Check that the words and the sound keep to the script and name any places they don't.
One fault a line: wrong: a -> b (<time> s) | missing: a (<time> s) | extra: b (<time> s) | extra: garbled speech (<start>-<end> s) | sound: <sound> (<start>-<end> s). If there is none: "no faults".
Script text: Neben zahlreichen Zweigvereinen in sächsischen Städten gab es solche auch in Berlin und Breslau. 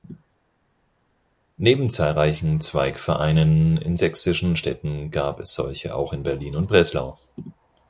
no faults